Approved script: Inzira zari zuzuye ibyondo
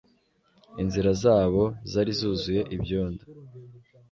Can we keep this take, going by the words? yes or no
no